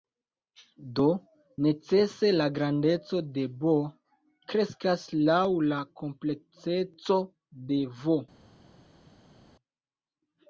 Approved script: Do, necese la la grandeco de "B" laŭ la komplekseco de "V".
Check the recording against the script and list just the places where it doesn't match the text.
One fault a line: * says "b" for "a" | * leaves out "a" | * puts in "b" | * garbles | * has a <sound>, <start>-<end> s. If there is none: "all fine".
* leaves out "la"
* puts in "kreskas"